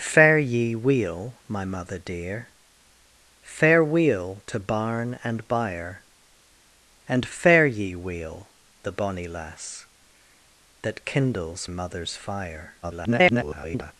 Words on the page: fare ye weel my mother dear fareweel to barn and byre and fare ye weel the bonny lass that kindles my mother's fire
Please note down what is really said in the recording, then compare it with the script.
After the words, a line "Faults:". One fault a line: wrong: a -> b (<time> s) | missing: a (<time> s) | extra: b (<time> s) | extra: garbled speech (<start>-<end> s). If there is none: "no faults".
fare ye weel my mother dear fareweel to barn and byre and fare ye weel the bonny lass that kindles mother's fire [garbled]
Faults:
missing: my (11.7 s)
extra: garbled speech (12.8-13.9 s)